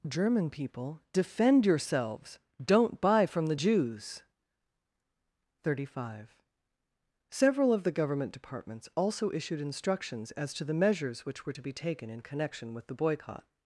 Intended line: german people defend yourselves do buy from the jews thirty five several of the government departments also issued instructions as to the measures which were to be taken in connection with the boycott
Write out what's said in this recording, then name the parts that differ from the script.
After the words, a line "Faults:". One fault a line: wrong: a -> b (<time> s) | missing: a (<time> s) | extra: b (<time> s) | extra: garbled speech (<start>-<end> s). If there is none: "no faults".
german people defend yourselves don't buy from the jews thirty five several of the government departments also issued instructions as to the measures which were to be taken in connection with the boycott
Faults:
wrong: do -> don't (2.6 s)